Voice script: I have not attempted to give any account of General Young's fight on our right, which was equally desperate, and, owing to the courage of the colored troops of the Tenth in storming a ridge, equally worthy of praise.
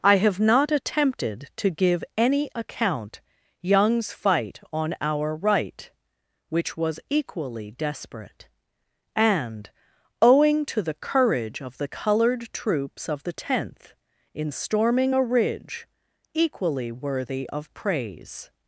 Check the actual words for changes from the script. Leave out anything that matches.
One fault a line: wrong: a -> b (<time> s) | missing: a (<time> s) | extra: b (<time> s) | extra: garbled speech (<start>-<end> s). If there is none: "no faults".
missing: of General (3.2 s)